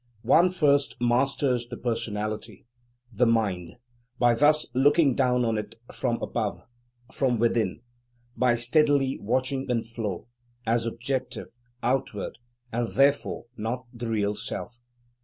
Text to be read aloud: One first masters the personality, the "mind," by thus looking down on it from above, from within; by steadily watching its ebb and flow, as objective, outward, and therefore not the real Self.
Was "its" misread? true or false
true